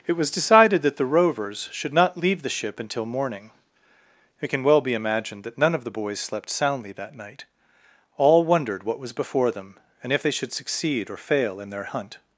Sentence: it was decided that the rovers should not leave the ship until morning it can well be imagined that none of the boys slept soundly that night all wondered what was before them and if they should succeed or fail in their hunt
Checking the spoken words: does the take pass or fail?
pass